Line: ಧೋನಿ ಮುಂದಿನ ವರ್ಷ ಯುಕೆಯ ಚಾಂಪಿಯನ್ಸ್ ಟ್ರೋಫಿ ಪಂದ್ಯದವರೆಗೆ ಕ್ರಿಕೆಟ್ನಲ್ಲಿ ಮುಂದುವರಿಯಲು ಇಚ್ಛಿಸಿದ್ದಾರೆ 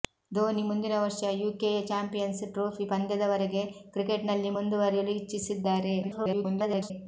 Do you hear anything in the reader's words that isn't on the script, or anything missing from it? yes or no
yes